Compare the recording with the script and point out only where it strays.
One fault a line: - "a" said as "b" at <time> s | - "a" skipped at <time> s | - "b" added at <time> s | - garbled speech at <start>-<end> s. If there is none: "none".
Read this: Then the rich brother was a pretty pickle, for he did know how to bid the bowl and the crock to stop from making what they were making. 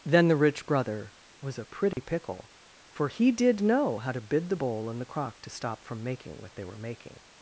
none